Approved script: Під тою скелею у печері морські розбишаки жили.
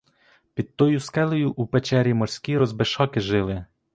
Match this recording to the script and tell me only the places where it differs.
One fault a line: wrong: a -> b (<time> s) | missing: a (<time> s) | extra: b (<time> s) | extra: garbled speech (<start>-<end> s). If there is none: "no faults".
no faults